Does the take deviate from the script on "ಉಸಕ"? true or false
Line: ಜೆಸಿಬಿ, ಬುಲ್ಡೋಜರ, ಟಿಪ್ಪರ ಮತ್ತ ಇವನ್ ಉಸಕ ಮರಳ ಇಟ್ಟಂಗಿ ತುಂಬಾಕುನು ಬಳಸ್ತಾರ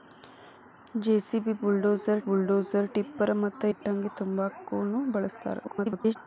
true